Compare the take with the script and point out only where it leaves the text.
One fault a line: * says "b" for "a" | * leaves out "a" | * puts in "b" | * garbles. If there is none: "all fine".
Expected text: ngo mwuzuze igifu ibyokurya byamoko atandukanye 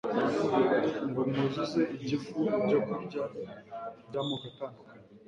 all fine